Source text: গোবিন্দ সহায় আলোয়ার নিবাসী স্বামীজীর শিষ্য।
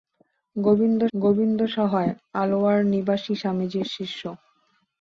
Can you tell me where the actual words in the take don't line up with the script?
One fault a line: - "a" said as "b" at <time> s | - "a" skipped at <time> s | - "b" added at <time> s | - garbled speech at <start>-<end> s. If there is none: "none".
- "গোবিন্দ" added at 1.1 s